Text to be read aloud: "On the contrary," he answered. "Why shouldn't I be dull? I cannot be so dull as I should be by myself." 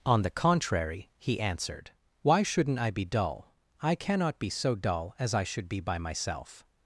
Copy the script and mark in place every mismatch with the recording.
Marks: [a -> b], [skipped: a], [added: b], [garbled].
"On the contrary," he answered. "Why shouldn't I be dull? I cannot be so dull as I should be by myself."